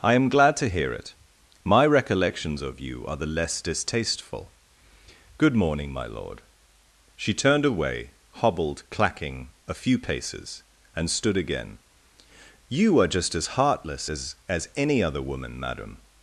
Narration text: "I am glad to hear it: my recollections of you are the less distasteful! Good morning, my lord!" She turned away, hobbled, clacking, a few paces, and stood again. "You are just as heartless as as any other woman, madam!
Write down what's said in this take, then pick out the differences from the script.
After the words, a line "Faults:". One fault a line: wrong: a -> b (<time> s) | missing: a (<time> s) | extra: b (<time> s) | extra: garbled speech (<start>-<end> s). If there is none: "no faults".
"I am glad to hear it: my recollections of you are the less distasteful! Good morning, my lord!" She turned away, hobbled, clacking, a few paces, and stood again. "You are just as heartless as as any other woman, madam!
Faults:
no faults